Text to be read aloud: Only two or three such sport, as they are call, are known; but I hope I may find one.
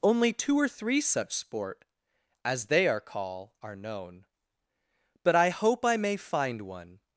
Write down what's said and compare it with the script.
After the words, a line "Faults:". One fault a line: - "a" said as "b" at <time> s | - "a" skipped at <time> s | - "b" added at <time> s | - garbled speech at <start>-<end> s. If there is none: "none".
Only two or three such sport, as they are call, are known; but I hope I may find one.
Faults:
none